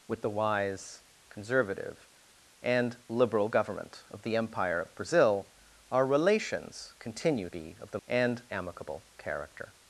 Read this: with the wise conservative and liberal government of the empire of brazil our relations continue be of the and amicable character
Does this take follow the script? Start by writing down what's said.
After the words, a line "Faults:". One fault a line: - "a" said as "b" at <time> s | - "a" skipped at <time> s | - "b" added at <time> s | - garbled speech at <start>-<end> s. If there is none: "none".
with the wise conservative and liberal government of the empire of brazil our relations continue be of the and amicable character
Faults:
none